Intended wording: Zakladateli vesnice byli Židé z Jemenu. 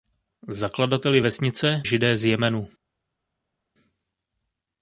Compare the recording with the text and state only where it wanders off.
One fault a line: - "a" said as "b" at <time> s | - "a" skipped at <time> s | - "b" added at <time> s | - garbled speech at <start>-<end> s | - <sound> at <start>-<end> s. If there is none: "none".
- "byli" skipped at 1.8 s